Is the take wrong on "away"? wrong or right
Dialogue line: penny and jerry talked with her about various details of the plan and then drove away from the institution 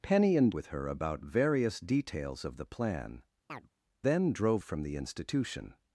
wrong